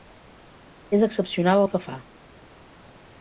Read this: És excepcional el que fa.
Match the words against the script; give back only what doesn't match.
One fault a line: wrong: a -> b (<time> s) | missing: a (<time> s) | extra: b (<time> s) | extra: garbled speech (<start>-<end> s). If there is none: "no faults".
no faults